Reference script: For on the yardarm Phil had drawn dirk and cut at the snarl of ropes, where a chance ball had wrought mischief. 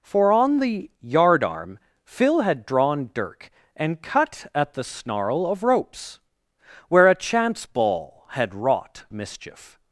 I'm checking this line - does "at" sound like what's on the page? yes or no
yes